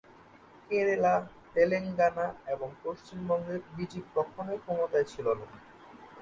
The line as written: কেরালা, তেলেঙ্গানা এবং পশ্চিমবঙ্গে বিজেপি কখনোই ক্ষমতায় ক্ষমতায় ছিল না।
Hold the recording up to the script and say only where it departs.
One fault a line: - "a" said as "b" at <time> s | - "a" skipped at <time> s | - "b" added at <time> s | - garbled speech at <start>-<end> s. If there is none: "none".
- "ক্ষমতায়" skipped at 5.1 s